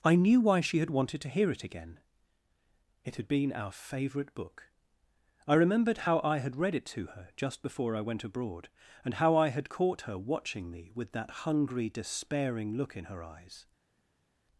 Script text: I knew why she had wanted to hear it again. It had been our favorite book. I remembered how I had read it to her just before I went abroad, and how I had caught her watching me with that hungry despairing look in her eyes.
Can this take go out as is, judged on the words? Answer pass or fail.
pass